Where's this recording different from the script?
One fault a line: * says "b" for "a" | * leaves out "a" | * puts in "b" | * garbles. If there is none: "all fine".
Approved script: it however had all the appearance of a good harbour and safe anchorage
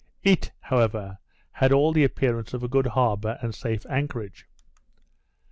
all fine